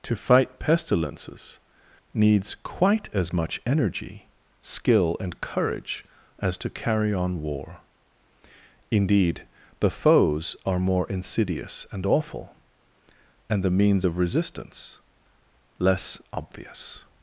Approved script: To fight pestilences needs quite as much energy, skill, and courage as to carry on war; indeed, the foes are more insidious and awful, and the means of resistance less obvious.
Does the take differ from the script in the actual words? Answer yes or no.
no